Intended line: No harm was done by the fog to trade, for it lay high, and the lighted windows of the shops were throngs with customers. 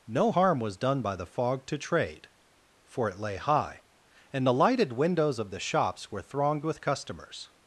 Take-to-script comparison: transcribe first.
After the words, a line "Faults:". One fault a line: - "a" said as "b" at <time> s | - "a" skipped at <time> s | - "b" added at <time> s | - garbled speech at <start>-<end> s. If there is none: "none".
No harm was done by the fog to trade, for it lay high, and the lighted windows of the shops were thronged with customers.
Faults:
- "throngs" said as "thronged" at 6.2 s